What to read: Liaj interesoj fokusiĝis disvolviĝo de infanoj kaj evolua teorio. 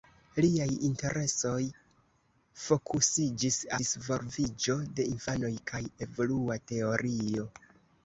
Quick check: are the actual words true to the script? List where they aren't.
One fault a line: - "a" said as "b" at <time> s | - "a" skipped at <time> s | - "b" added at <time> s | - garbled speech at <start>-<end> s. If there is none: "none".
none